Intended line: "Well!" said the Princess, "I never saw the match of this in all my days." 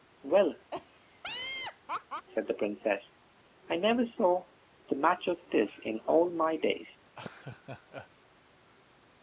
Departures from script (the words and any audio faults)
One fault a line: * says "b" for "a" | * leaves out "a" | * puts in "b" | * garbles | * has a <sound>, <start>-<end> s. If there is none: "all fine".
* has a laugh, 0.7-2.3 s
* has a laugh, 7.1-8.1 s